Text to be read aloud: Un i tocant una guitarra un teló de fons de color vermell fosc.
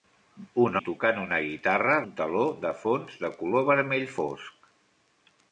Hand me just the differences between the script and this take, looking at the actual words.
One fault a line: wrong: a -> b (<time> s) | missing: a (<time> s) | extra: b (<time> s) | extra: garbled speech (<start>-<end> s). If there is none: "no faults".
no faults